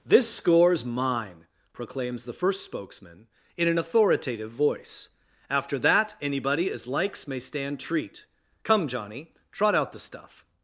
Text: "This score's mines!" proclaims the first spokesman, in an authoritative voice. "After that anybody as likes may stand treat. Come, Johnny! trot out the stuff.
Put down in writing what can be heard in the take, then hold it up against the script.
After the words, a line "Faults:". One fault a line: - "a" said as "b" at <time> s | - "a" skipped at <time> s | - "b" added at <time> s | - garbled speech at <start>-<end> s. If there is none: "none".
"This score's mine!" proclaims the first spokesman, in an authoritative voice. "After that anybody as likes may stand treat. Come, Johnny! trot out the stuff.
Faults:
- "mines" said as "mine" at 0.8 s